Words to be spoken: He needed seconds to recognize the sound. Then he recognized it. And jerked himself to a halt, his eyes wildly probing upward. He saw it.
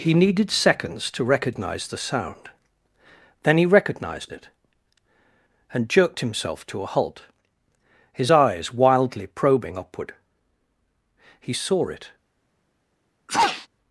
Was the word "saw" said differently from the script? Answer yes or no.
no